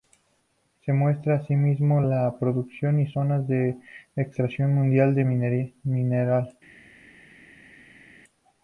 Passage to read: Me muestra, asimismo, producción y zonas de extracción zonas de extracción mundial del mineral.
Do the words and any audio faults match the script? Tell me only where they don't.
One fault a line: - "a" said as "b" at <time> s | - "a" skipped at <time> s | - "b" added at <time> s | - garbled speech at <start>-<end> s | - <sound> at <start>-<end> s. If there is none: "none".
- "Me" said as "Se" at 0.8 s
- "la" added at 2.0 s
- "zonas de extracción" skipped at 4.7 s